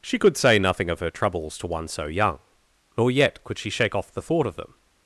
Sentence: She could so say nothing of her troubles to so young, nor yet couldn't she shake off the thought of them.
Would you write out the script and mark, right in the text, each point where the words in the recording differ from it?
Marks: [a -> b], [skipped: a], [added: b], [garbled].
She could [skipped: so] say nothing of her troubles to [added: one] so young, nor yet [couldn't -> could] she shake off the thought of them.